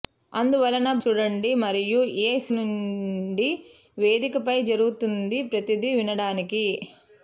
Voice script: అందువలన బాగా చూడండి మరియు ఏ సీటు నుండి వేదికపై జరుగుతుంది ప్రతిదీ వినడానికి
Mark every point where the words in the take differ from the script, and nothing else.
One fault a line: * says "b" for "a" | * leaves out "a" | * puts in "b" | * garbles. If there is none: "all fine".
* leaves out "బాగా"
* leaves out "సీటు"